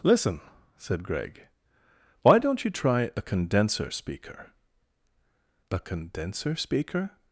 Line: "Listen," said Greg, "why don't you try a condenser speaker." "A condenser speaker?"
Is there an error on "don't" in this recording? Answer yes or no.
no